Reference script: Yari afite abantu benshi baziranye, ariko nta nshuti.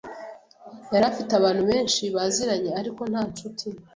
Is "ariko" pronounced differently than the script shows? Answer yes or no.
no